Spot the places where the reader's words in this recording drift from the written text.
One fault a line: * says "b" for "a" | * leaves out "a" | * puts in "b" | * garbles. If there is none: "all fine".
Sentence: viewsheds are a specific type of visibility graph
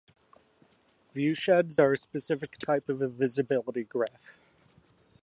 all fine